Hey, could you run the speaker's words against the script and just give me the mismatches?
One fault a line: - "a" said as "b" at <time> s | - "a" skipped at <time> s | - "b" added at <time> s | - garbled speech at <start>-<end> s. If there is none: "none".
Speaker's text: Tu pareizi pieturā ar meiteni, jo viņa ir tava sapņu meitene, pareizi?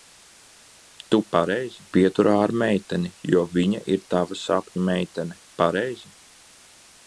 none